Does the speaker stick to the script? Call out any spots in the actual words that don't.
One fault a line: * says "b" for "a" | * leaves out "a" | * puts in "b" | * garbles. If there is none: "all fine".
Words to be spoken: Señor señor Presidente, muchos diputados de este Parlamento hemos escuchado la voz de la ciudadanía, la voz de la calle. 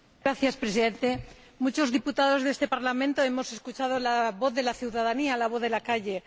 * leaves out "señor"